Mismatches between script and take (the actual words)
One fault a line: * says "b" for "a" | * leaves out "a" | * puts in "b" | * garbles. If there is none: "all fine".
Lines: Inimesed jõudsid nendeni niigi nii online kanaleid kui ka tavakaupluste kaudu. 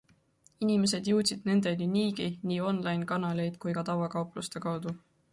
all fine